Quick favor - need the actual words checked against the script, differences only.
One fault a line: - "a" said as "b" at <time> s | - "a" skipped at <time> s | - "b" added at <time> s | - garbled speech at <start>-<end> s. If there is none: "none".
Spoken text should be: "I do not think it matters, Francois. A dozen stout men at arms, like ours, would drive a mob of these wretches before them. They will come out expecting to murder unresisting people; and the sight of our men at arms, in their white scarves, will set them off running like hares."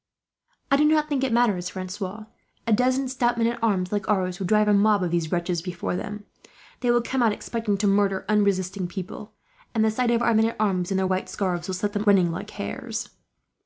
- "off" skipped at 12.0 s